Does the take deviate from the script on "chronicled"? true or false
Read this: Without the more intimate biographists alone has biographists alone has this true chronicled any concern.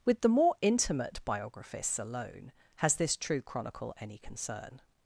true